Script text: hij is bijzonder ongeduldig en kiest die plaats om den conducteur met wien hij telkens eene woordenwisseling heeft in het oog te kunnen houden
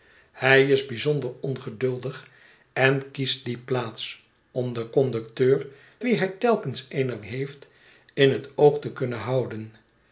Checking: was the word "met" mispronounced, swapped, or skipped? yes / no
yes